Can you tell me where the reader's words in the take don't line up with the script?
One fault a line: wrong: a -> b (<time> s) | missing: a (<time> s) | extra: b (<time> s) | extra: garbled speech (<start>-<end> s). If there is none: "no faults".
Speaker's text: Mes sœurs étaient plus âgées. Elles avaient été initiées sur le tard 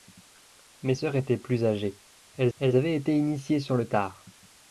extra: elles (2.6 s)